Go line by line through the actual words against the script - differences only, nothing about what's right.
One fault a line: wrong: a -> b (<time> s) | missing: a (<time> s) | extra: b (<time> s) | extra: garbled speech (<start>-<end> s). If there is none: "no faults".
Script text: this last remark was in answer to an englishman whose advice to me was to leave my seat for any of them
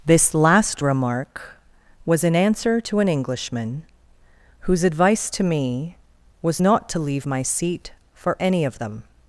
extra: not (6.6 s)